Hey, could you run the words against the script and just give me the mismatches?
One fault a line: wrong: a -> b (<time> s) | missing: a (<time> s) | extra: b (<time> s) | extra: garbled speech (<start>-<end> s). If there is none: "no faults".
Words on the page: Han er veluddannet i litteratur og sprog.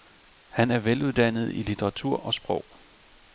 no faults